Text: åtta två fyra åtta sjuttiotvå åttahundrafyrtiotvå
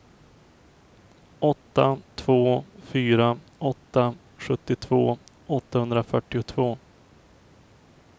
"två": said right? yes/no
yes